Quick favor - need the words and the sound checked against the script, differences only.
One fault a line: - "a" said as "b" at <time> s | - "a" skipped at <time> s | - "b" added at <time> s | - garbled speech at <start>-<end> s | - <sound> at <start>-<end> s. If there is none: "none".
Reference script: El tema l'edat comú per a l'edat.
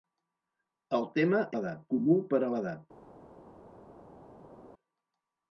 none